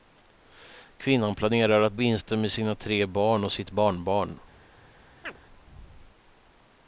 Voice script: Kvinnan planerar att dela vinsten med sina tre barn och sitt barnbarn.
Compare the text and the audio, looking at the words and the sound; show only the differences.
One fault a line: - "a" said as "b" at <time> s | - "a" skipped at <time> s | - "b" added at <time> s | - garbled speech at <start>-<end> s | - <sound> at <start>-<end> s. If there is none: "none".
- "dela" skipped at 2.0 s
- chirp at 5.2-5.4 s